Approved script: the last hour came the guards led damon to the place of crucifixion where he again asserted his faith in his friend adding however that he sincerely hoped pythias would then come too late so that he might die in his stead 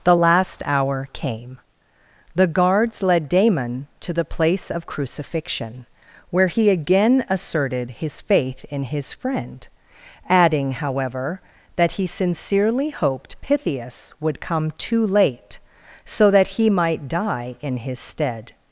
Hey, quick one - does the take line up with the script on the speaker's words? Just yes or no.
no